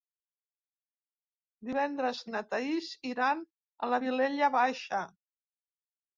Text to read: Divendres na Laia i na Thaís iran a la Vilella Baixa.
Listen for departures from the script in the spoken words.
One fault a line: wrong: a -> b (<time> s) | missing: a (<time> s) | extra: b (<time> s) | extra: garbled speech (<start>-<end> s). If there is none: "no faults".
missing: na Laia (2.2 s)